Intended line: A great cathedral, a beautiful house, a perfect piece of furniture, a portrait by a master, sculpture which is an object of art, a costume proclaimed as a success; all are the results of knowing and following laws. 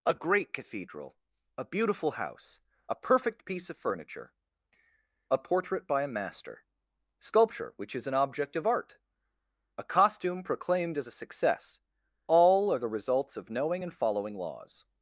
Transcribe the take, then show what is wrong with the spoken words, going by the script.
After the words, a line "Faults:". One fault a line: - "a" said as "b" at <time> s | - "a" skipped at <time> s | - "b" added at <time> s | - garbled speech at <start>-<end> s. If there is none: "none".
A great cathedral, a beautiful house, a perfect piece of furniture, a portrait by a master, sculpture which is an object of art, a costume proclaimed as a success; all are the results of knowing and following laws.
Faults:
none